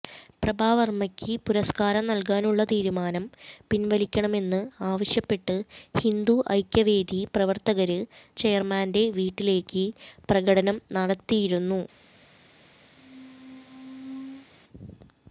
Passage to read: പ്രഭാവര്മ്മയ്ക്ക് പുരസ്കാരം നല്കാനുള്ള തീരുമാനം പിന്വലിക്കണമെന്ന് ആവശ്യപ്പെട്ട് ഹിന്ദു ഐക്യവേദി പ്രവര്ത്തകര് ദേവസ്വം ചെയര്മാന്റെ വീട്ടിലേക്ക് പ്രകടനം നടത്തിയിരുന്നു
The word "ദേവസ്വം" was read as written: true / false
false